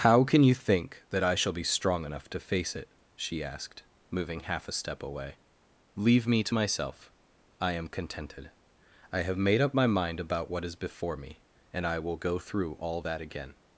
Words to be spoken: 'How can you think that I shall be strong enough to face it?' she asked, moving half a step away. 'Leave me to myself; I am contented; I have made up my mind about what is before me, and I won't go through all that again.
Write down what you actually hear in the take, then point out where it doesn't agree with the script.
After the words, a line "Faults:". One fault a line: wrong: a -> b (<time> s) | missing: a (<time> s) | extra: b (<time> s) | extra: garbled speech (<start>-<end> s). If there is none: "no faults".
'How can you think that I shall be strong enough to face it?' she asked, moving half a step away. 'Leave me to myself; I am contented; I have made up my mind about what is before me, and I will go through all that again.
Faults:
wrong: won't -> will (12.0 s)